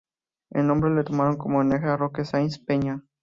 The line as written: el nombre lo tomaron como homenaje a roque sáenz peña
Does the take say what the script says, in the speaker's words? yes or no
yes